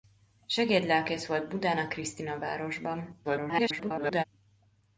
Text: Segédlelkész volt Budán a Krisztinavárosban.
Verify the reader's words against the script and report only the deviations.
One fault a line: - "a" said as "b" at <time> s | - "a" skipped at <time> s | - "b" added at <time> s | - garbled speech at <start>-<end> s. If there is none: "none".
- garbled speech at 3.2-4.2 s